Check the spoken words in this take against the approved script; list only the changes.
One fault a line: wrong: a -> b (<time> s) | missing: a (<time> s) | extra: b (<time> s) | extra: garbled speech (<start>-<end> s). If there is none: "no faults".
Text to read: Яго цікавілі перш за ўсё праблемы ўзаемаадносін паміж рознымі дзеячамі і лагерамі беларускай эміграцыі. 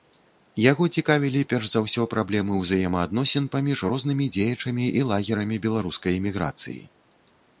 no faults